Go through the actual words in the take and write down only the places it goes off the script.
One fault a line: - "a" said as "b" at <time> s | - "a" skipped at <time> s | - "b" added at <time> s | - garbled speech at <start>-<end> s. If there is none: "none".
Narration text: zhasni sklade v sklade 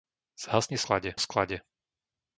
none